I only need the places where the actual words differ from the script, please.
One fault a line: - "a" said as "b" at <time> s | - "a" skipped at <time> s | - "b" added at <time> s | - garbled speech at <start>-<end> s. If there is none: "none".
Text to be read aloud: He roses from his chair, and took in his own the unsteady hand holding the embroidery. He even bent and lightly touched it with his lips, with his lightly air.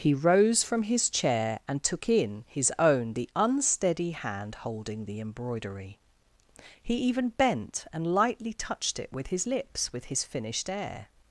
- "roses" said as "rose" at 0.1 s
- "lightly" said as "finished" at 10.2 s